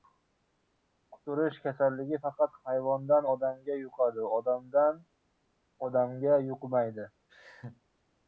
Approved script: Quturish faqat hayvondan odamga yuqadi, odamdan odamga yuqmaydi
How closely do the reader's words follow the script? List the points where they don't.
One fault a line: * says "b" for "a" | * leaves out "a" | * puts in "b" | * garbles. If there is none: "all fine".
* puts in "kasalligi"